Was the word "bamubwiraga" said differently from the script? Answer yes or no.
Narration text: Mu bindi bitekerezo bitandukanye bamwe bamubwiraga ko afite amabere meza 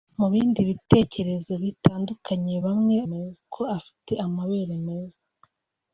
yes